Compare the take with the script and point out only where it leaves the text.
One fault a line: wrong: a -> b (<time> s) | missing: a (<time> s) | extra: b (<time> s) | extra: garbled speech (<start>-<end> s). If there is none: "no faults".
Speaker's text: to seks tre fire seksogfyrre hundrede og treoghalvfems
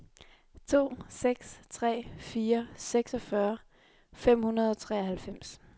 extra: fem (4.1 s)